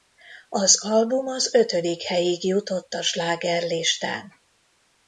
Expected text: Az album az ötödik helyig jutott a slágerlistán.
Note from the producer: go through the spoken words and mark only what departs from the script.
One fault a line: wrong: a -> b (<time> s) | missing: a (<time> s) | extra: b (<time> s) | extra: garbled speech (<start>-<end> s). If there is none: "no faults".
no faults